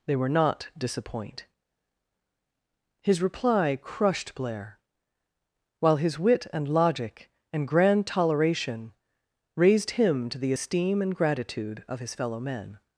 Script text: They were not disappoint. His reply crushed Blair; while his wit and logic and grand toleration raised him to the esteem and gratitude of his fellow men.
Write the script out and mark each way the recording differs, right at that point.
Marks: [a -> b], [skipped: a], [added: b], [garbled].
They were not disappoint. His reply crushed Blair; while his wit and logic and grand toleration raised him to the esteem and gratitude of his fellow men.